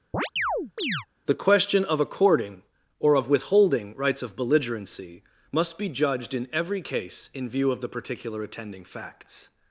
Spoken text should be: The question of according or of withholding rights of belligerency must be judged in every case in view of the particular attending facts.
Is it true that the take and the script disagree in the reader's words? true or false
false